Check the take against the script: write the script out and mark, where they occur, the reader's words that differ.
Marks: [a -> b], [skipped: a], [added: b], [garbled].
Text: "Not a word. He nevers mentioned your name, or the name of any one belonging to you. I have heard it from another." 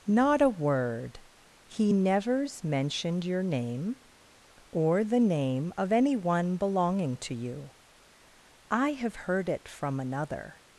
"Not a word. He nevers mentioned your name, or the name of any one belonging to you. I have heard it from another."